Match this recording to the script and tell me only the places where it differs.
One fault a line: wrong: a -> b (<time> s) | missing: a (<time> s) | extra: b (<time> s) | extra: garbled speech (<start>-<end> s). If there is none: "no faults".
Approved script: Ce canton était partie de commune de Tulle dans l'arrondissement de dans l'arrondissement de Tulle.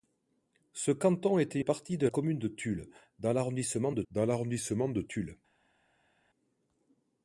no faults